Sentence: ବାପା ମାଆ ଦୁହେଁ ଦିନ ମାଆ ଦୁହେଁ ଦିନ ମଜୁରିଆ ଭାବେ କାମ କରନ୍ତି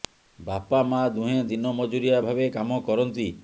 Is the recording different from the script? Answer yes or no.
yes